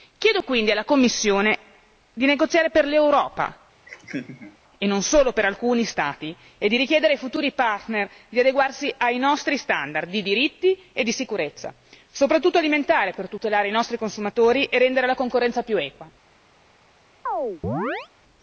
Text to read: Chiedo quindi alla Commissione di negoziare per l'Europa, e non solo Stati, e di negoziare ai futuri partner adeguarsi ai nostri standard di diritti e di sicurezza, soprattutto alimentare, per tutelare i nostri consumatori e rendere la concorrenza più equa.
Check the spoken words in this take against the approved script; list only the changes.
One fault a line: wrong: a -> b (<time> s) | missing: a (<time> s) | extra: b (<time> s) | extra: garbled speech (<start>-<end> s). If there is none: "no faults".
extra: per alcuni (5.3 s)
wrong: negoziare -> richiedere (6.8 s)
extra: di (8.3 s)